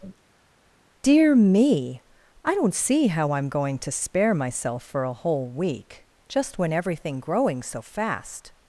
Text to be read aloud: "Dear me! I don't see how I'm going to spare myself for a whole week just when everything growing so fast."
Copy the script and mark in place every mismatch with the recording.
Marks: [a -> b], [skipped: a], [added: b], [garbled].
"Dear me! I don't see how I'm going to spare myself for a whole week just when everything growing so fast."